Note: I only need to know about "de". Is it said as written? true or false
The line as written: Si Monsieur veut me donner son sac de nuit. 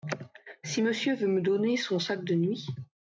true